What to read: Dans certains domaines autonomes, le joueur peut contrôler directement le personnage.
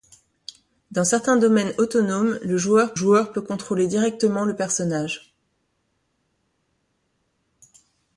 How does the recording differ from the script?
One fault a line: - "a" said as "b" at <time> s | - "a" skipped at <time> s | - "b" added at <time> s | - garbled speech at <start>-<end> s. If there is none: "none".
- "joueur" added at 2.9 s